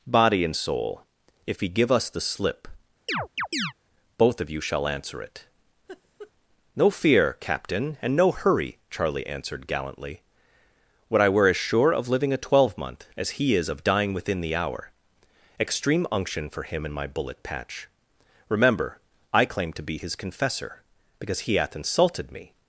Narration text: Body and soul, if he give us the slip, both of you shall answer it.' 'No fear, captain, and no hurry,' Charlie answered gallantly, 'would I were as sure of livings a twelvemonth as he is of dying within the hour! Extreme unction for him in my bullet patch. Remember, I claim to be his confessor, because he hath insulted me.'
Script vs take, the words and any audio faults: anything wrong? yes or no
yes